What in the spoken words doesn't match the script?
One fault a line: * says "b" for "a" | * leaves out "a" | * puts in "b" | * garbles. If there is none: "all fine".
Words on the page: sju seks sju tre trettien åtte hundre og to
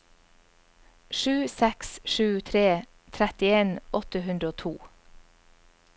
all fine